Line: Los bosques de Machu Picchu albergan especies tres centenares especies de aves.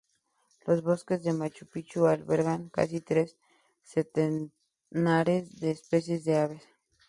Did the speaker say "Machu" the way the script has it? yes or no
yes